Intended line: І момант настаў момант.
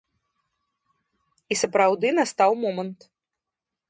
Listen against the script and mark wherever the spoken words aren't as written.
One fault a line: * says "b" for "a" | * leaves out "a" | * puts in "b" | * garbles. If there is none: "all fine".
* says "сапраўды" for "момант"